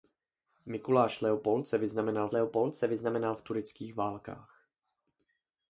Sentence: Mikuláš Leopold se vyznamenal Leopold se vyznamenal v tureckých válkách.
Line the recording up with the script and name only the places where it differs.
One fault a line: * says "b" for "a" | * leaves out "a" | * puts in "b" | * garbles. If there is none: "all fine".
all fine